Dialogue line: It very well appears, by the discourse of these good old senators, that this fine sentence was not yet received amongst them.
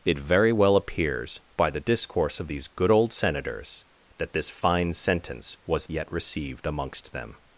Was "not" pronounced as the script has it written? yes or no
no